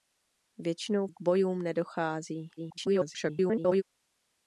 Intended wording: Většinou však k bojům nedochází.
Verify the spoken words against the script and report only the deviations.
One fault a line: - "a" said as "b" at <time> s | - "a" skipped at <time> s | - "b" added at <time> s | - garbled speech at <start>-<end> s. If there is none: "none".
- "však" skipped at 1.1 s
- garbled speech at 2.6-3.8 s